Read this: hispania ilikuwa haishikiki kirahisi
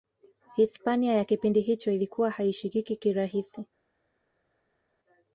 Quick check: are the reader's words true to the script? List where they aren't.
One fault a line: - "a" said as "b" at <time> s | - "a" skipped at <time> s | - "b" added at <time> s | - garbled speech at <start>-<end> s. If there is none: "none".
- "ya kipindi hicho" added at 1.1 s